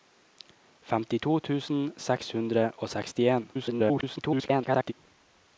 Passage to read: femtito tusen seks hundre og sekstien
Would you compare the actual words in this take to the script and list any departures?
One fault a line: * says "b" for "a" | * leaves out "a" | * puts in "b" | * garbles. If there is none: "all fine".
* garbles